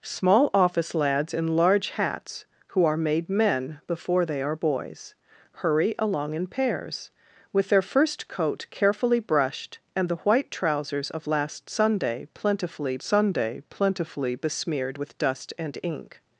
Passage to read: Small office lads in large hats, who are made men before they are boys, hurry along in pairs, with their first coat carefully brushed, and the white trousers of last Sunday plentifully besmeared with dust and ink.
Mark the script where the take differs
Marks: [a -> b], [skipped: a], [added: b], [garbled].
Small office lads in large hats, who are made men before they are boys, hurry along in pairs, with their first coat carefully brushed, and the white trousers of last Sunday plentifully [added: Sunday plentifully] besmeared with dust and ink.